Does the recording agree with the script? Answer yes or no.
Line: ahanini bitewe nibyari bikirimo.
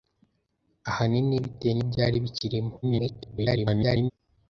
no